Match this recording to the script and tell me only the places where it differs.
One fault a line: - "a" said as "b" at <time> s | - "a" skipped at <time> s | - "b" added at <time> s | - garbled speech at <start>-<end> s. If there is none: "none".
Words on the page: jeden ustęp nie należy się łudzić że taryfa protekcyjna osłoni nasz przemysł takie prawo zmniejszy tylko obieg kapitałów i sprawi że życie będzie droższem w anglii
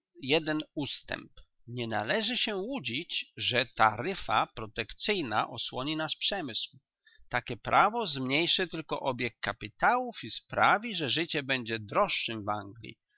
none